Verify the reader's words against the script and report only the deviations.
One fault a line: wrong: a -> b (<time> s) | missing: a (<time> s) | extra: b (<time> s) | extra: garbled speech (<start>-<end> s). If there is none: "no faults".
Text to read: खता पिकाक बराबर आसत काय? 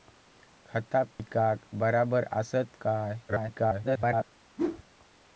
extra: garbled speech (3.3-4.3 s)